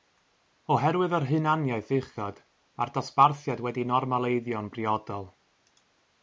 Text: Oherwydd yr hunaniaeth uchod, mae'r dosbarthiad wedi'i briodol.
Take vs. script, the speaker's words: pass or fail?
fail